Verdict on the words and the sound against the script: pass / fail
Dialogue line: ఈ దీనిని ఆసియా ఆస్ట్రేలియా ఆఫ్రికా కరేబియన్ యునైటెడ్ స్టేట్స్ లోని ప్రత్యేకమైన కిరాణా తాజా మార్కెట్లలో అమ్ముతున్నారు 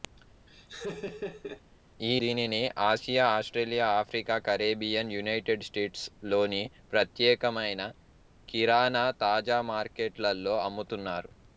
fail